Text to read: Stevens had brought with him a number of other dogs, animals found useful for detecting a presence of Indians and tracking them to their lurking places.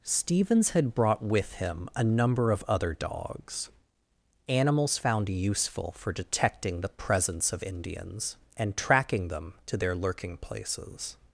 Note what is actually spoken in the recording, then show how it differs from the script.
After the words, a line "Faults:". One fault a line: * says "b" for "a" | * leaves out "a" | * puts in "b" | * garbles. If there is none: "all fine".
Stevens had brought with him a number of other dogs, animals found useful for detecting the presence of Indians and tracking them to their lurking places.
Faults:
* says "the" for "a"